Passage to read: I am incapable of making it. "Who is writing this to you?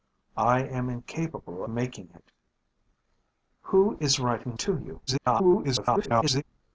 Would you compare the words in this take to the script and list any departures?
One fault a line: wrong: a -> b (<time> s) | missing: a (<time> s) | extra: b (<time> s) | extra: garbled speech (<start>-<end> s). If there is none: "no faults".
missing: of (1.6 s)
missing: this (4.6 s)
extra: garbled speech (5.1-6.4 s)